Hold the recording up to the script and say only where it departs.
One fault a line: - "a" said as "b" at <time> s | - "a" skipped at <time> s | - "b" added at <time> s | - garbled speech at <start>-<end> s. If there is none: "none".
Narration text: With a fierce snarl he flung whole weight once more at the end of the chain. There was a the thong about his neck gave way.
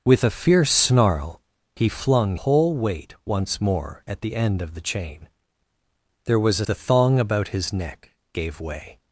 none